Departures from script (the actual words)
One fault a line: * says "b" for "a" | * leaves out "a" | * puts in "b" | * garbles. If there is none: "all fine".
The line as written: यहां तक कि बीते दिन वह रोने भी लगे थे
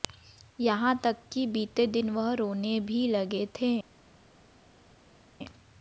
all fine